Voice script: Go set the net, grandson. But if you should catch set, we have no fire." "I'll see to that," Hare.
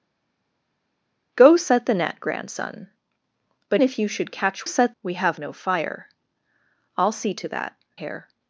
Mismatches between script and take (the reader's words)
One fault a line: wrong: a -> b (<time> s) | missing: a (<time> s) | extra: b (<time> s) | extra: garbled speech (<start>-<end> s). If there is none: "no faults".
no faults